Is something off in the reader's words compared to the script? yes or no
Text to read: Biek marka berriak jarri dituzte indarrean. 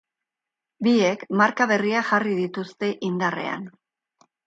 no